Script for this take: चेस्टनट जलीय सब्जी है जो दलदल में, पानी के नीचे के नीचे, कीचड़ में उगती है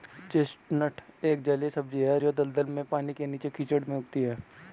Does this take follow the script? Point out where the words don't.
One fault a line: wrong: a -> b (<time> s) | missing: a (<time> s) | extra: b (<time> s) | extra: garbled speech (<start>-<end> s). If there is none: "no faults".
extra: एक (1.2 s)
missing: के नीचे (3.5 s)